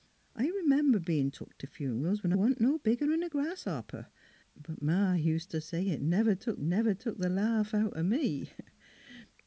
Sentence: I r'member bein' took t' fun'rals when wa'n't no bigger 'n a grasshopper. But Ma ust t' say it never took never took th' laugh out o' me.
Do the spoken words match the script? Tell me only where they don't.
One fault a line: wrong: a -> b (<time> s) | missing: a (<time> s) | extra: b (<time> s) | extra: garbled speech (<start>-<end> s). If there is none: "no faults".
no faults